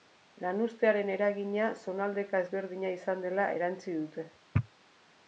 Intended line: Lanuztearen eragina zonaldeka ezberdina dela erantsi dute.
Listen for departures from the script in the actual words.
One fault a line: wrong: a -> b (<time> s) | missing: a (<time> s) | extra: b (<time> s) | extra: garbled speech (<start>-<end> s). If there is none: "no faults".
extra: izan (3.0 s)